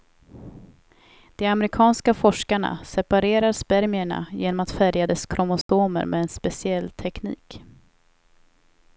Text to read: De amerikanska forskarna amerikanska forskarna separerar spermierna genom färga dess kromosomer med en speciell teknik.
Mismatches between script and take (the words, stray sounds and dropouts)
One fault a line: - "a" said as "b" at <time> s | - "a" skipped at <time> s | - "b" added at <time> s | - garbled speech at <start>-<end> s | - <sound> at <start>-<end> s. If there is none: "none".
- "amerikanska forskarna" skipped at 2.8 s
- "att" added at 4.6 s
- dropout at 5.6-5.7 s